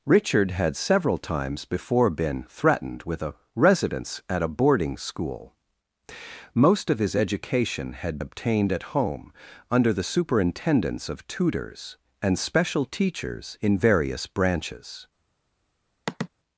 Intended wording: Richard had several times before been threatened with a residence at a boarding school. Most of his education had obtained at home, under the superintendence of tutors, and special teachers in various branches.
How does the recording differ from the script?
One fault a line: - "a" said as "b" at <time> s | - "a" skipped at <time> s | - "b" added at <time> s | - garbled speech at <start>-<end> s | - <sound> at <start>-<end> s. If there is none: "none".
- sigh at 16.1-16.3 s